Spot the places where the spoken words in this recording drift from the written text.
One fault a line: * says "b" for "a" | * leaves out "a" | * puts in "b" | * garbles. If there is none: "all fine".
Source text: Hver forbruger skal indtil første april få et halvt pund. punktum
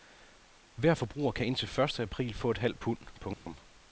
* says "kan" for "skal"